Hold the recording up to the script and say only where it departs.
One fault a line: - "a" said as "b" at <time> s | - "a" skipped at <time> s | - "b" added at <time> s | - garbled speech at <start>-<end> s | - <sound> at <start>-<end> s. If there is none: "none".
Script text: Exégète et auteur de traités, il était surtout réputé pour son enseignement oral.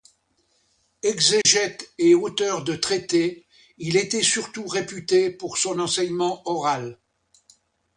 - dropout at 1.4-1.5 s